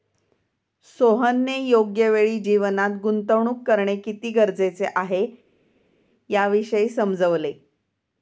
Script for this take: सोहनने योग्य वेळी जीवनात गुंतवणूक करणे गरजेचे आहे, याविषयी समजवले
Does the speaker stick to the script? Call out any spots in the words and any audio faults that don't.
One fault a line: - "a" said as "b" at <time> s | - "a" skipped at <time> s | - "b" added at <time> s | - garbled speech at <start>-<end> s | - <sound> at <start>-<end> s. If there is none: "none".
- "किती" added at 4.0 s